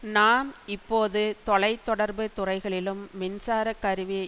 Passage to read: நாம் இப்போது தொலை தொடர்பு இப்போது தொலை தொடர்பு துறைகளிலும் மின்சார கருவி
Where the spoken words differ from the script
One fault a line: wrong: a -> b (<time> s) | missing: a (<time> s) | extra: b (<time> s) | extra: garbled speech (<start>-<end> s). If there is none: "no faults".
missing: இப்போது தொலை தொடர்பு (2.2 s)